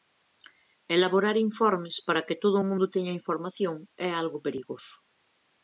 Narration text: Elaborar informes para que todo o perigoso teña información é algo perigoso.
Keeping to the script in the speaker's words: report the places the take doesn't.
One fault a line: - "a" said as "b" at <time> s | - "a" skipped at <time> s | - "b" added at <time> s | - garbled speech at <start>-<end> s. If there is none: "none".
- "perigoso" said as "mundo" at 2.7 s